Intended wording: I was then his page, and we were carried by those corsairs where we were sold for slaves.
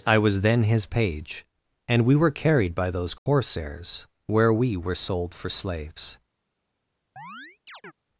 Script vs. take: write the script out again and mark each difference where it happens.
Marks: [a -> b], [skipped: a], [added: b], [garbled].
I was then his page, and we were carried by those corsairs where we were sold for slaves.